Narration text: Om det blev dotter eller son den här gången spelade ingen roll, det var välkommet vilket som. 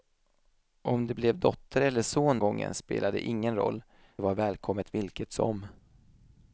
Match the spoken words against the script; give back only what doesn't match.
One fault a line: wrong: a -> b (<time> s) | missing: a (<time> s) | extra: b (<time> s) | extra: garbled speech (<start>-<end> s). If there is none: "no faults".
missing: den här (2.4 s)
missing: det (3.8 s)